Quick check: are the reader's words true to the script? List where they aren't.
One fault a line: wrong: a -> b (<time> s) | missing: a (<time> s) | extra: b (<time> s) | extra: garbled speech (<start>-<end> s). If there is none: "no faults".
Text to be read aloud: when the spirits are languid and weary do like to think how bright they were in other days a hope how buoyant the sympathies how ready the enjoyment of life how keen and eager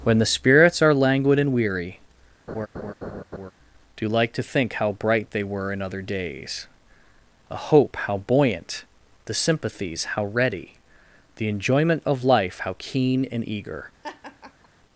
no faults